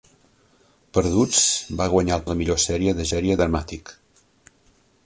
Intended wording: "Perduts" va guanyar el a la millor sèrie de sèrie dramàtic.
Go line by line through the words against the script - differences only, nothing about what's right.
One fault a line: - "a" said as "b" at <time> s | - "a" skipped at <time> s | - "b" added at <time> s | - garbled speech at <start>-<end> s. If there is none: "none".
none